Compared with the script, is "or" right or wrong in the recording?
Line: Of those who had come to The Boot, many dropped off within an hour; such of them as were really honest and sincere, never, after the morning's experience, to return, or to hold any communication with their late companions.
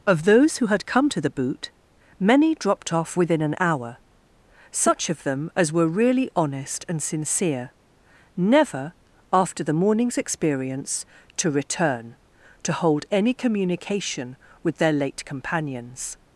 wrong